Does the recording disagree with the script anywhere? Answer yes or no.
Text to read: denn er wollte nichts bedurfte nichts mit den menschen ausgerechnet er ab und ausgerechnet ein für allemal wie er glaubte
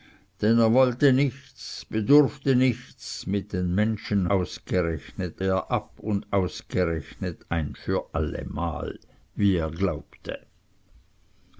no